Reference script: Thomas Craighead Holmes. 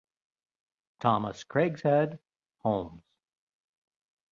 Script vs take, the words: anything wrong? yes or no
no